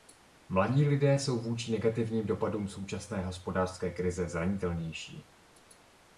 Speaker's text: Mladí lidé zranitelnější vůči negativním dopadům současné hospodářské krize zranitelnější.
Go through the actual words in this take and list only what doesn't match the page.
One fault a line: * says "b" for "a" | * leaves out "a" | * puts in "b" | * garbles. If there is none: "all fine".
* says "jsou" for "zranitelnější"